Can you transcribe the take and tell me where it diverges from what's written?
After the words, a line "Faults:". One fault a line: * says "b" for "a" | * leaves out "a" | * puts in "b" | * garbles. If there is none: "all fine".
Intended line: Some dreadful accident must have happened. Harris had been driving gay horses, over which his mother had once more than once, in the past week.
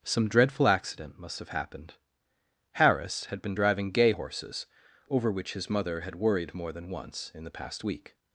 Some dreadful accident must have happened. Harris had been driving gay horses, over which his mother had worried more than once, in the past week.
Faults:
* says "worried" for "once"